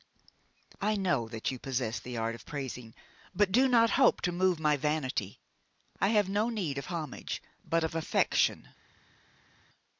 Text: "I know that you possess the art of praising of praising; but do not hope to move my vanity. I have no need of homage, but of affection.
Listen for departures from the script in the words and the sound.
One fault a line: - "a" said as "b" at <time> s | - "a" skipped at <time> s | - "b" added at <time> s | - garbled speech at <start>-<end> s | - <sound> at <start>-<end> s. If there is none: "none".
- "of praising" skipped at 2.9 s